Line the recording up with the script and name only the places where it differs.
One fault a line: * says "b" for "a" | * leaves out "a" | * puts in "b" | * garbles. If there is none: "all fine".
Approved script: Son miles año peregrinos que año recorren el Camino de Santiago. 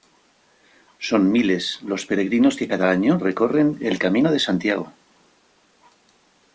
* says "los" for "año"
* puts in "cada"